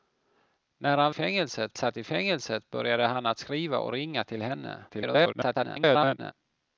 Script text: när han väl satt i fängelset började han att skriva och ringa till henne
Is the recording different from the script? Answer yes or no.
yes